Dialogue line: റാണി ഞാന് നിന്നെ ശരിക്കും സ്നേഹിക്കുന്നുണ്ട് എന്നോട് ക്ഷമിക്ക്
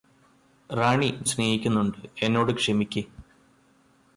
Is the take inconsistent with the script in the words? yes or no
yes